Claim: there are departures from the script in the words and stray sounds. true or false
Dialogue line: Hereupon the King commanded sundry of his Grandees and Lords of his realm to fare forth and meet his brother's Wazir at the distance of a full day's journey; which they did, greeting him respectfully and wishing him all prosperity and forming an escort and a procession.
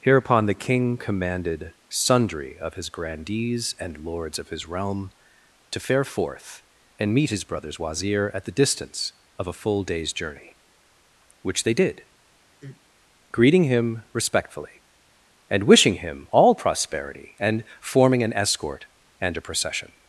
true